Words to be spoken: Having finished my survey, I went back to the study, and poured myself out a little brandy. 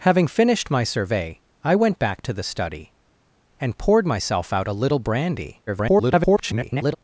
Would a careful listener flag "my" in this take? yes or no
no